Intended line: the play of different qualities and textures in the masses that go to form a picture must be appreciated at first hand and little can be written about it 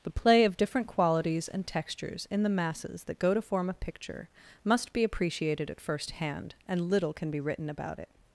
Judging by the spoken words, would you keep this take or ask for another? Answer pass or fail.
pass